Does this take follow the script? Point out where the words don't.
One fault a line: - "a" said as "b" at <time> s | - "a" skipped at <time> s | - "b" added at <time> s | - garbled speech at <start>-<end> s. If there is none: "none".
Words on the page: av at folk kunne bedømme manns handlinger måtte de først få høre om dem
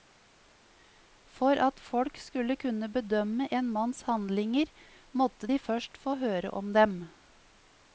- "av" said as "for" at 1.3 s
- "skulle" added at 2.2 s
- "en" added at 3.6 s